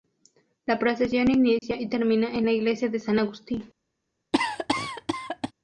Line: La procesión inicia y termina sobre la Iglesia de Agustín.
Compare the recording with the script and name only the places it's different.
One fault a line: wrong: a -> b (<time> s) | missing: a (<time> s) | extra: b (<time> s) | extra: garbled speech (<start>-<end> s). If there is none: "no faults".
wrong: sobre -> en (2.3 s)
extra: San (3.0 s)